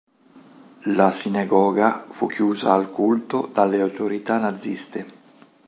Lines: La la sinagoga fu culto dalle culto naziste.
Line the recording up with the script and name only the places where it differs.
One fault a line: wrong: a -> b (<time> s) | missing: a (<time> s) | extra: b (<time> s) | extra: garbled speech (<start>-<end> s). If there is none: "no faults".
missing: la (1.1 s)
extra: chiusa al (2.2 s)
wrong: culto -> autorità (3.8 s)